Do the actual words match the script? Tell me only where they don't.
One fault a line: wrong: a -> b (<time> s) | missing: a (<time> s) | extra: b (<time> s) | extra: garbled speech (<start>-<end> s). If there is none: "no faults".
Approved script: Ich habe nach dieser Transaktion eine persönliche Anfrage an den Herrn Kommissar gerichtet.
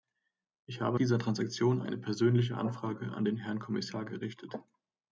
missing: nach (1.0 s)